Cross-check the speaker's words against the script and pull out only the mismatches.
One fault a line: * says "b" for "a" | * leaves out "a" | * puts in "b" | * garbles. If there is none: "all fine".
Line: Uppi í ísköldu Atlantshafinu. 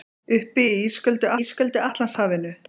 * puts in "ísköldu"